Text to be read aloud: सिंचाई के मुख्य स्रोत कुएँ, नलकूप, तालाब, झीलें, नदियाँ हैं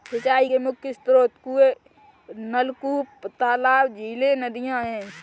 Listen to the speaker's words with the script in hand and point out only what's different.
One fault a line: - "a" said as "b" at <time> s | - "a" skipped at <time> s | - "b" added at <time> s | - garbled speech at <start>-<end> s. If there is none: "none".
none